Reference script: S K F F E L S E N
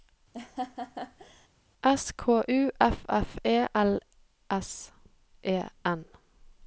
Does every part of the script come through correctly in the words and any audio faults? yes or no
no